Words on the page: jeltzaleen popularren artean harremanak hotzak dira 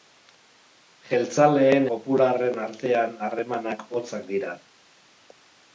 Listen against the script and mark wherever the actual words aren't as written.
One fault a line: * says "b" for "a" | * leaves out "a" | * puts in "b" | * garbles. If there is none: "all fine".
all fine